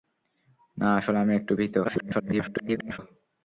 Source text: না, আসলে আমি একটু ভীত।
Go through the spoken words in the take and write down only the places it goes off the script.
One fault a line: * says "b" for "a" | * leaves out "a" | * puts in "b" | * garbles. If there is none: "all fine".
* garbles